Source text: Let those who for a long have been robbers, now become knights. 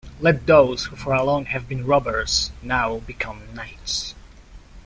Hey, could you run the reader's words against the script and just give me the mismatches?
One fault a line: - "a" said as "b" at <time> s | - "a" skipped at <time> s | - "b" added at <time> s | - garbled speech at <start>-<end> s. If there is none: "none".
none